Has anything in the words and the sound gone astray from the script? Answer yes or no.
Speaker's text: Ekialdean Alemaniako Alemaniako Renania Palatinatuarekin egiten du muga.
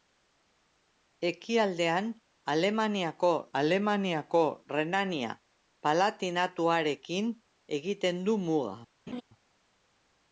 yes